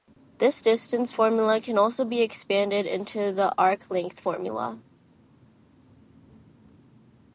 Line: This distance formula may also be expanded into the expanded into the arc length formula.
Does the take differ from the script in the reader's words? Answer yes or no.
yes